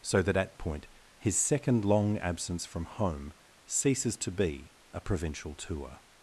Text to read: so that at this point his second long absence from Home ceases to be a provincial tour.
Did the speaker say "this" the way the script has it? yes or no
no